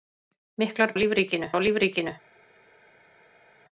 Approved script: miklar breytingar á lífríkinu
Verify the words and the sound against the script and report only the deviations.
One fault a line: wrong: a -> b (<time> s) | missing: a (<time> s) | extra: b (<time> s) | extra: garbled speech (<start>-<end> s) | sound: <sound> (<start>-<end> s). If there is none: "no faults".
wrong: breytingar -> lífríkinu (1.0 s)